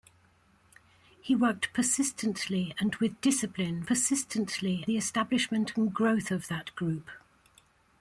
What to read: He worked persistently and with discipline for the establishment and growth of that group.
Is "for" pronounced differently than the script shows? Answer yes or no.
yes